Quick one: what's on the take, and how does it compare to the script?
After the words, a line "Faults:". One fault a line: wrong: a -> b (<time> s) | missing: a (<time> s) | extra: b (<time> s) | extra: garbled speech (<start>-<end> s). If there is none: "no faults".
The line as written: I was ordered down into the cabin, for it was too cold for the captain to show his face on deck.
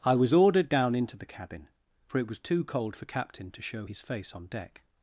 I was ordered down into the cabin, for it was too cold for captain to show his face on deck.
Faults:
missing: the (3.0 s)